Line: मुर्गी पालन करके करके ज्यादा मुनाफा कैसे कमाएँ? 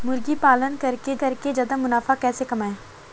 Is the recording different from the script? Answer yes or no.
no